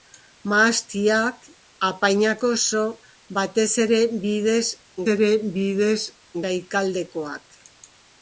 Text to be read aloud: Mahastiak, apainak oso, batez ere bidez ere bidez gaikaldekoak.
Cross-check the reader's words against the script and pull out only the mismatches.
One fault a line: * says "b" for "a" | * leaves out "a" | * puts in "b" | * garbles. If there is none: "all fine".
all fine